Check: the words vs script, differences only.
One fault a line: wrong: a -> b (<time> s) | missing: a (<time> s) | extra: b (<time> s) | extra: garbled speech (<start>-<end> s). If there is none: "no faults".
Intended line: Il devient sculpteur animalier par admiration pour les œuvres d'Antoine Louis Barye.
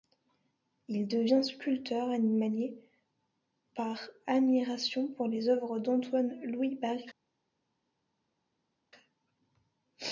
no faults